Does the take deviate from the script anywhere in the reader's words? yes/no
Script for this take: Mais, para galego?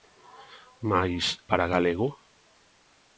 no